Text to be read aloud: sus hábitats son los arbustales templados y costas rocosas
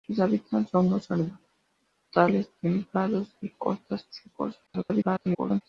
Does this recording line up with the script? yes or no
no